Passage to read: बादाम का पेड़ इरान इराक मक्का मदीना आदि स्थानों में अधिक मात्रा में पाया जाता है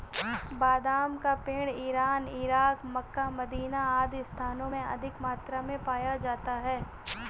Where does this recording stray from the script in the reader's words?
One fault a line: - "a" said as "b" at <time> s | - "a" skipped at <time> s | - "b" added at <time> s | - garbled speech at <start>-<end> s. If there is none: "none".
none